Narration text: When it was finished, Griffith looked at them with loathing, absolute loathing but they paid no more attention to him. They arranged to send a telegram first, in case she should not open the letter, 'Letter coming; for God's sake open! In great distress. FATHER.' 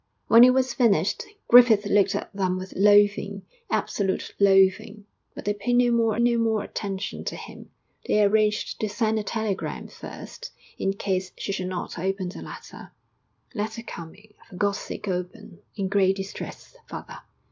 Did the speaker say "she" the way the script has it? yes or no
yes